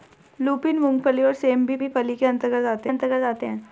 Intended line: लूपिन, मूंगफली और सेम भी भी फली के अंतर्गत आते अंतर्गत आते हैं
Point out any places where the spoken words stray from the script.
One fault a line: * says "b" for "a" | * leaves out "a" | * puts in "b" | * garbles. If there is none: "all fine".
all fine